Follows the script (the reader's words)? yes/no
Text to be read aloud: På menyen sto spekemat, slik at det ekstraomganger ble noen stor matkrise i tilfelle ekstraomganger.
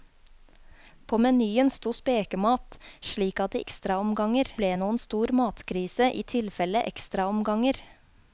yes